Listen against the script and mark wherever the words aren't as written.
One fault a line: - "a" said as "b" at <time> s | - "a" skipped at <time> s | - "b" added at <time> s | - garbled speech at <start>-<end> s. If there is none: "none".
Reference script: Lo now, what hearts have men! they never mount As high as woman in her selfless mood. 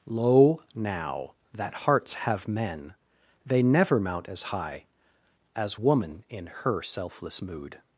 - "what" said as "that" at 1.5 s